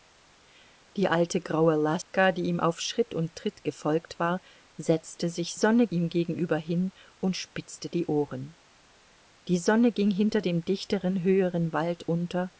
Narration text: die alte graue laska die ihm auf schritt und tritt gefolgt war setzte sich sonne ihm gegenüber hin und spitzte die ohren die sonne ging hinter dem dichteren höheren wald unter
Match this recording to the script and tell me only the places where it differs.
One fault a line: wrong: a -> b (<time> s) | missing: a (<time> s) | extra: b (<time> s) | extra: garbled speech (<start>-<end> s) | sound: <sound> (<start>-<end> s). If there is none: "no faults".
sound: dropout (2.0-2.1 s)